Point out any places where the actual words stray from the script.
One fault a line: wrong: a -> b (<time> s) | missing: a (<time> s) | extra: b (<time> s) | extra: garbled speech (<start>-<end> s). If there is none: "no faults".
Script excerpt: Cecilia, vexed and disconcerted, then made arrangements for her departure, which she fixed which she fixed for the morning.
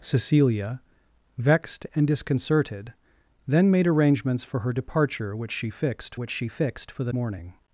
no faults